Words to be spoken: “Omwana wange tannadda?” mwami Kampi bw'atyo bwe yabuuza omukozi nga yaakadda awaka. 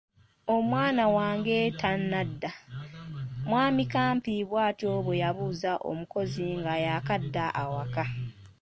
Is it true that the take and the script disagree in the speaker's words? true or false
false